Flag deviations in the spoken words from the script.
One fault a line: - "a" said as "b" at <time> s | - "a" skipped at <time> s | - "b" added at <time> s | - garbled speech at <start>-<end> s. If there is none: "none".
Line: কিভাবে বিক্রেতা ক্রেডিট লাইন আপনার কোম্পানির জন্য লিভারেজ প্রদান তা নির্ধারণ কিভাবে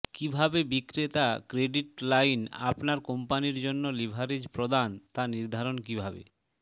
none